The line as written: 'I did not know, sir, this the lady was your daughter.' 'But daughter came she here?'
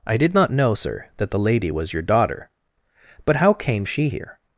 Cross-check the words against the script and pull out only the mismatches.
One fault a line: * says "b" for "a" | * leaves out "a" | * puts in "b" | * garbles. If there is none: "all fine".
* says "that" for "this"
* says "how" for "daughter"